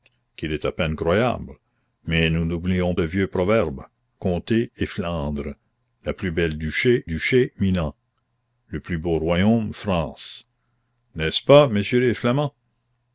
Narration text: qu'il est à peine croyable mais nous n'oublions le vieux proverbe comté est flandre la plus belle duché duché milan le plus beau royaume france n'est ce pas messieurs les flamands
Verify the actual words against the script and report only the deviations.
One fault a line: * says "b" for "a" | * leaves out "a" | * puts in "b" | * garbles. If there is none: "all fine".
all fine